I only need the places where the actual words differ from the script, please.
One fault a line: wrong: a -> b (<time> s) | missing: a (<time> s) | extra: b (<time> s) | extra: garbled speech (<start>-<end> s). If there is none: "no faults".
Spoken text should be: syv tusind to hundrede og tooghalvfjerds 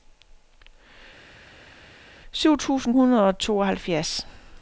missing: to (2.9 s)